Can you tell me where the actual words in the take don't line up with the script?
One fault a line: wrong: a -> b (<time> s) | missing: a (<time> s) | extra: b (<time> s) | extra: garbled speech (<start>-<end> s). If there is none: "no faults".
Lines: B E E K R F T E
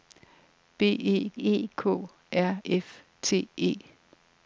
no faults